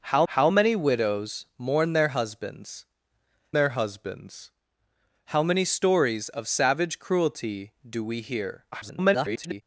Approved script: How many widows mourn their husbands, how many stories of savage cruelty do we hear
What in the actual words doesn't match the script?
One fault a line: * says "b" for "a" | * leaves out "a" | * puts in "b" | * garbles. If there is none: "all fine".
* puts in "how"
* puts in "their husbands"
* garbles